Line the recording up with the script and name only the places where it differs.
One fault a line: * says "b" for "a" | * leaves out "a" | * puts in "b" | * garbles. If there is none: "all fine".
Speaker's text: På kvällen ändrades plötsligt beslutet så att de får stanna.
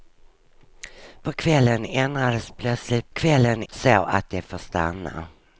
* says "kvällen" for "beslutet"